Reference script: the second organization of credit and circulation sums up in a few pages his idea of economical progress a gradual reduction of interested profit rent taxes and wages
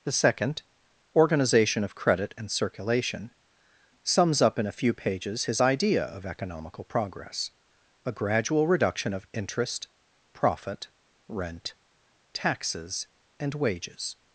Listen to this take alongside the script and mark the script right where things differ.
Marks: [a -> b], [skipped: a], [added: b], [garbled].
the second organization of credit and circulation sums up in a few pages his idea of economical progress a gradual reduction of [interested -> interest] profit rent taxes and wages